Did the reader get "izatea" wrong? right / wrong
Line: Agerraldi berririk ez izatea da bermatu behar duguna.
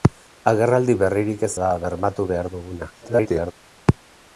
wrong